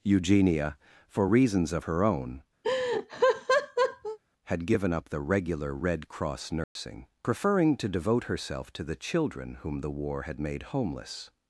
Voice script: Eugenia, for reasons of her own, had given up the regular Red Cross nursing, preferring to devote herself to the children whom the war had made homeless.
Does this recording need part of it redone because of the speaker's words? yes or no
no